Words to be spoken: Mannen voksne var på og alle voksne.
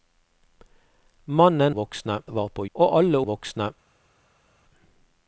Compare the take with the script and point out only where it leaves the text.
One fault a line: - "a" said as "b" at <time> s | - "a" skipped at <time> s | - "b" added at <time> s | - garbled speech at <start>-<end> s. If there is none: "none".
none